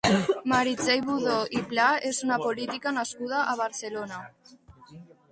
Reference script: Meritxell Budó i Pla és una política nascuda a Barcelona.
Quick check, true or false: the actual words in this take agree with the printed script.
true